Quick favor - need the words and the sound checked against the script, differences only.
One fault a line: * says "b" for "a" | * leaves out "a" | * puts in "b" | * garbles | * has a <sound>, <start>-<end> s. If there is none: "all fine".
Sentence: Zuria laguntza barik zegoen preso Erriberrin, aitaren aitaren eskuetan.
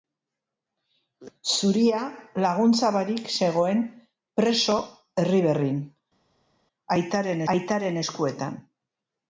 all fine